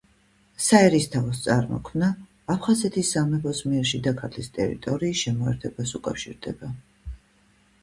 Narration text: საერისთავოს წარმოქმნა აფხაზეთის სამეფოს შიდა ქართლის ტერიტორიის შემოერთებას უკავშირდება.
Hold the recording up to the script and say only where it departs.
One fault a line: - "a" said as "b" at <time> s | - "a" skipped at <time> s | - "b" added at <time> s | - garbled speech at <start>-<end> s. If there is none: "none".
- "მიერ" added at 3.7 s